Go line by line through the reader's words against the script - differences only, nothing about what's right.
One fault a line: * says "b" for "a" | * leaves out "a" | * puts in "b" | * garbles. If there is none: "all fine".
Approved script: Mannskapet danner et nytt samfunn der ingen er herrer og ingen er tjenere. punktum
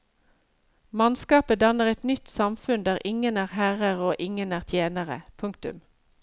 all fine